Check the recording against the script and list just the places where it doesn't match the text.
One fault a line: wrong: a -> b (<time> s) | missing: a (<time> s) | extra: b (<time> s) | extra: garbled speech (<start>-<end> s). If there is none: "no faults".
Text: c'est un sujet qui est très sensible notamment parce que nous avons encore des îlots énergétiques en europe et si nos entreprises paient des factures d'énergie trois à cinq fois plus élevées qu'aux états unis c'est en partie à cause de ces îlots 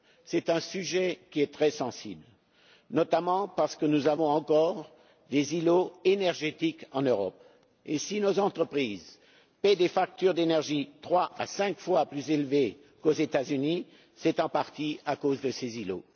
no faults